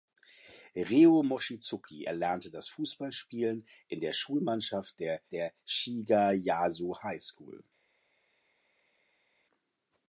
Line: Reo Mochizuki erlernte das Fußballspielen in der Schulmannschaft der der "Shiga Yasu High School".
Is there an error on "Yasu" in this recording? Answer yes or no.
no